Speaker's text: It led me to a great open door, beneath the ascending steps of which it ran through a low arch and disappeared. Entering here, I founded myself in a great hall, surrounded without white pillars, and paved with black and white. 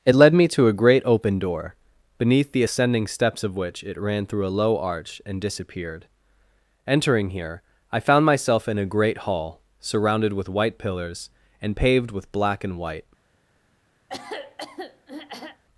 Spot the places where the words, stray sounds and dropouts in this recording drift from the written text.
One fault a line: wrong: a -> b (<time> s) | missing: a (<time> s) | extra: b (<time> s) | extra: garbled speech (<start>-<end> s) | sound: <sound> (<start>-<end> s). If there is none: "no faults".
wrong: founded -> found (8.0 s)
wrong: without -> with (10.3 s)
sound: throat clearing (14.1-15.6 s)